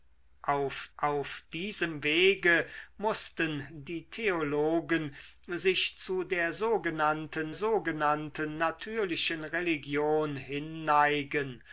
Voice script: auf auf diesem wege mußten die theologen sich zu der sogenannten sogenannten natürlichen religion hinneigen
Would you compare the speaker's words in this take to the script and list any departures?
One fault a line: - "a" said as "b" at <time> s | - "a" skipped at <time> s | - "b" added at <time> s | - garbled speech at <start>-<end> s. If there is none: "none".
none